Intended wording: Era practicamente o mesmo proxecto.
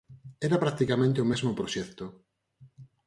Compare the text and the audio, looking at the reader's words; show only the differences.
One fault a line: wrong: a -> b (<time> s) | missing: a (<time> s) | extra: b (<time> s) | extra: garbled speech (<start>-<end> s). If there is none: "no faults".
no faults